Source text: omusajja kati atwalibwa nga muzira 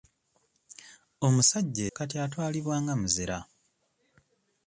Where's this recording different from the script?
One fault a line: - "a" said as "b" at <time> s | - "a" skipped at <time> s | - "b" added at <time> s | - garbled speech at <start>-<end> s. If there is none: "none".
none